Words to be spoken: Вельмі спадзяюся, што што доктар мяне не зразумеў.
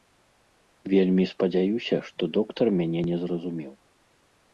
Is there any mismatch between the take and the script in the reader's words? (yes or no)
yes